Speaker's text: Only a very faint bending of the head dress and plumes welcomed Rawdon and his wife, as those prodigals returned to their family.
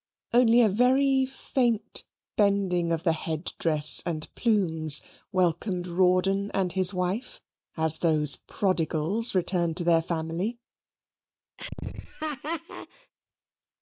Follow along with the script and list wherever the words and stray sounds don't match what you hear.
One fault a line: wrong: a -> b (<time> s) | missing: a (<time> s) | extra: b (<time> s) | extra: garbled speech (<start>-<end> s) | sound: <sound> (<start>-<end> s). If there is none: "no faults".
sound: laugh (11.6-13.1 s)